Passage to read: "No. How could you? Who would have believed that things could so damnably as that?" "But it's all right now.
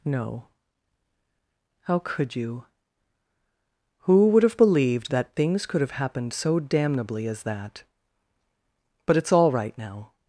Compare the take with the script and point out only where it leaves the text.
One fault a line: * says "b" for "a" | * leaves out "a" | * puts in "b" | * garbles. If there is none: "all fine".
* puts in "have happened"